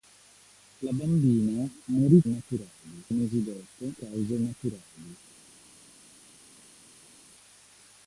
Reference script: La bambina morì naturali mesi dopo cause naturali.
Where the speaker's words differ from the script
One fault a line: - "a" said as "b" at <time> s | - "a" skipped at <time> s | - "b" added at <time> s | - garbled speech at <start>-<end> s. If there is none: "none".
none